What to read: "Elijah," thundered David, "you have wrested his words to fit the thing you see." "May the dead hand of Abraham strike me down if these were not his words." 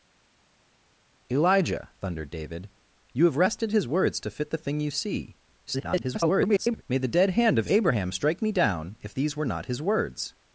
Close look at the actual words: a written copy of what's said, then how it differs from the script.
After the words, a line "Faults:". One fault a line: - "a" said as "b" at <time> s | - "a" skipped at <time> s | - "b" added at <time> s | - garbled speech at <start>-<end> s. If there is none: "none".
"Elijah," thundered David, "you have wrested his words to fit the thing you see." [garbled] "May the dead hand of Abraham strike me down if these were not his words."
Faults:
- garbled speech at 5.7-6.8 s